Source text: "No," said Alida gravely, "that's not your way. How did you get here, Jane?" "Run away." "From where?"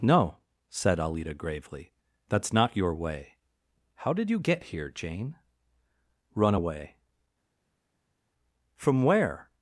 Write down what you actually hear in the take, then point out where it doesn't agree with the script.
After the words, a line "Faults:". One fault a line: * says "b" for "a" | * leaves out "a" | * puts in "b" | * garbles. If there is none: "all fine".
"No," said Alida gravely, "that's not your way. How did you get here, Jane?" "Run away." "From where?"
Faults:
all fine